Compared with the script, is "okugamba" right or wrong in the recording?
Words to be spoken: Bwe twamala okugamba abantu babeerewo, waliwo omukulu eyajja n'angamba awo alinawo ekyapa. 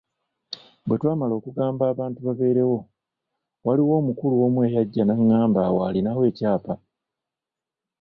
right